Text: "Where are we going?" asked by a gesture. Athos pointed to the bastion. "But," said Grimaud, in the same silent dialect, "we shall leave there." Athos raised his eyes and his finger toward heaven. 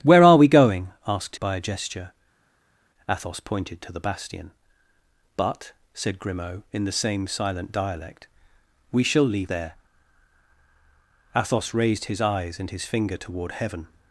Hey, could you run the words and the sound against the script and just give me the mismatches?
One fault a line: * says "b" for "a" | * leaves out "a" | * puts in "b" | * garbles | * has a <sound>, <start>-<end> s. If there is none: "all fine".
all fine